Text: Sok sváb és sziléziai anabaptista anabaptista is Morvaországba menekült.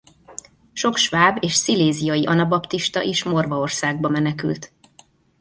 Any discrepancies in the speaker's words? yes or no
yes